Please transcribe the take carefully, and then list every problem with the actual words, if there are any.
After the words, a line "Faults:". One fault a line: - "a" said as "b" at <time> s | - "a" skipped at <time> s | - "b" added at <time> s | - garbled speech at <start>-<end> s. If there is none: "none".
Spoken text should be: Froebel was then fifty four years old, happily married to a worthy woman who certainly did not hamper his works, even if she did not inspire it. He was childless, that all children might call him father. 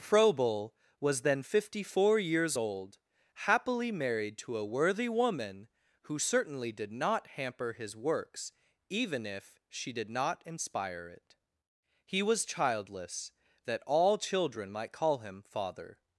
Froebel was then fifty four years old, happily married to a worthy woman who certainly did not hamper his works, even if she did not inspire it. He was childless, that all children might call him father.
Faults:
none